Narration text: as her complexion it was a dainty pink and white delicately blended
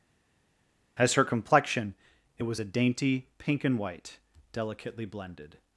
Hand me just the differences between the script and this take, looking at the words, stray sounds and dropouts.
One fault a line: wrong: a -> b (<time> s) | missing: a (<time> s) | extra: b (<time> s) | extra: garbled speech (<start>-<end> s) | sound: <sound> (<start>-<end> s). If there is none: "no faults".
no faults